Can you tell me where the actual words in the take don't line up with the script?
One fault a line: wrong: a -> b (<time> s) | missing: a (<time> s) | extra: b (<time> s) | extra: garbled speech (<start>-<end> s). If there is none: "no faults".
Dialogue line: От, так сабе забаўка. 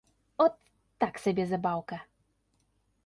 no faults